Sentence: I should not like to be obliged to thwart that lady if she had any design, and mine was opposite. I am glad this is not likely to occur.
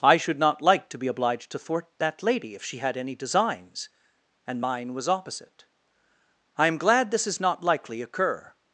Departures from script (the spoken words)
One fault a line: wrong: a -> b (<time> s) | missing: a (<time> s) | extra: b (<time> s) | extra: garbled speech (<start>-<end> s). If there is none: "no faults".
wrong: design -> designs (3.1 s)
missing: to (8.0 s)